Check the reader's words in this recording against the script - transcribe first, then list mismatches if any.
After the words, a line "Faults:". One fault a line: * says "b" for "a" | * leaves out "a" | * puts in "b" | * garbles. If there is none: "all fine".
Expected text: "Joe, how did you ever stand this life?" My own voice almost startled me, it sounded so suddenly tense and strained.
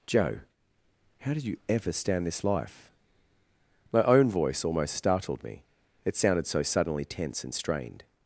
"Joe, how did you ever stand this life?" My own voice almost startled me, it sounded so suddenly tense and strained.
Faults:
all fine